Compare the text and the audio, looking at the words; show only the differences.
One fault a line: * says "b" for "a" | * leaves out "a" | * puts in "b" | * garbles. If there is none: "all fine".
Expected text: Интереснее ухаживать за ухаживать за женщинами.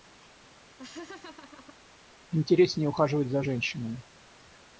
* leaves out "ухаживать за"